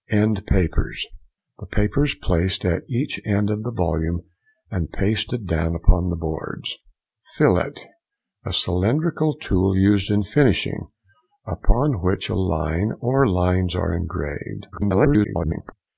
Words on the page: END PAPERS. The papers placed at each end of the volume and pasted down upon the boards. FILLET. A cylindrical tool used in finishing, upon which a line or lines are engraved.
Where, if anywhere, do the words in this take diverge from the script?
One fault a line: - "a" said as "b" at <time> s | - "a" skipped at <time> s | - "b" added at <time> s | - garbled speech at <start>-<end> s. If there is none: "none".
- garbled speech at 14.7-15.7 s